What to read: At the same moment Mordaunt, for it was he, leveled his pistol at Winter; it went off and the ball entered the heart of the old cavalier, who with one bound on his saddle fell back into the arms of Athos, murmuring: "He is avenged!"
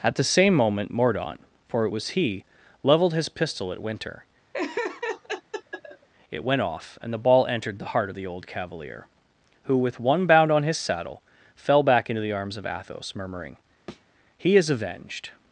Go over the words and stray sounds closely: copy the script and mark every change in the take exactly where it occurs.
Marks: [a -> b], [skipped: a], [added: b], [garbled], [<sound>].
At the same moment Mordaunt, for it was he, leveled his pistol at Winter; [laugh] it went off and the ball entered the heart of the old cavalier, who with one bound on his saddle fell back into the arms of Athos, murmuring: [thud] "He is avenged!"